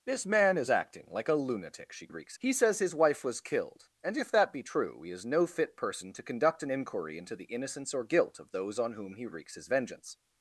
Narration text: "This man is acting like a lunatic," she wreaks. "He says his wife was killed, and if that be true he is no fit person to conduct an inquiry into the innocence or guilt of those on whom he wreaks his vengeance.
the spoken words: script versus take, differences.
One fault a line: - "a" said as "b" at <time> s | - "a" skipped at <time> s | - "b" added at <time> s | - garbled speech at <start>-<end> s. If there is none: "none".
none